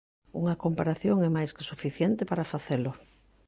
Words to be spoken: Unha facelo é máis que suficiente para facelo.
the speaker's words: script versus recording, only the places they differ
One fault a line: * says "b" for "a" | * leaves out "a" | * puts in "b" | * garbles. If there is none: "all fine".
* says "comparación" for "facelo"